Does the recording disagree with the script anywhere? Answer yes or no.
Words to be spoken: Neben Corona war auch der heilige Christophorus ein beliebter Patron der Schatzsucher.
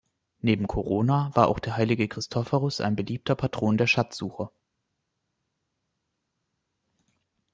no